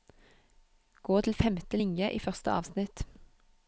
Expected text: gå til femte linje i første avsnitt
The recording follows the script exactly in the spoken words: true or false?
true